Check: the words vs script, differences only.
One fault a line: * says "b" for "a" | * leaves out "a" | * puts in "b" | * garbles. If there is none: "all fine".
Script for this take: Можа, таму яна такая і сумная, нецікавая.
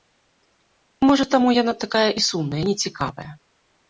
all fine